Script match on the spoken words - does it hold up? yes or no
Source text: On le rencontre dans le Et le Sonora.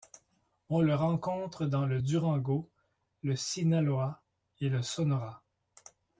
no